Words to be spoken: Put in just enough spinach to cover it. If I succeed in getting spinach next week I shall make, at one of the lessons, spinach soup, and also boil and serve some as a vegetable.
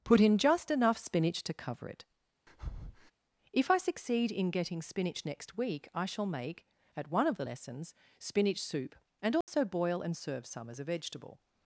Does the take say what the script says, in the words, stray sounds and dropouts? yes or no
no